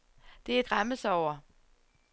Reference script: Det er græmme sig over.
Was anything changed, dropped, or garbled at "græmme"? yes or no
no